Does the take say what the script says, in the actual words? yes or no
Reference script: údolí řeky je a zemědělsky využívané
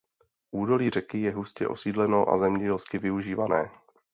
no